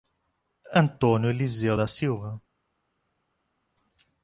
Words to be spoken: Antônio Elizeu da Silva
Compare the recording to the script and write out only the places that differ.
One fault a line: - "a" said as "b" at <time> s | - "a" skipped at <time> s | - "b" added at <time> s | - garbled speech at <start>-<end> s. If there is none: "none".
none